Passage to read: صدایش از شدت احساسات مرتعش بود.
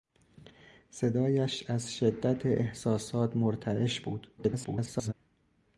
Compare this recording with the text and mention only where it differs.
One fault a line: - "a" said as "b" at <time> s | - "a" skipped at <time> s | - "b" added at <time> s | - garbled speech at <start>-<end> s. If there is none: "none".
- garbled speech at 4.4-5.1 s